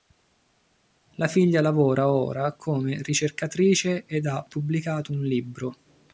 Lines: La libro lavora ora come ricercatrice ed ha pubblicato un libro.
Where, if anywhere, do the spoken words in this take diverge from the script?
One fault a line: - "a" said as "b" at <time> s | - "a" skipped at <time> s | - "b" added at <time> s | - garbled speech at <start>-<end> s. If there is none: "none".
- "libro" said as "figlia" at 1.3 s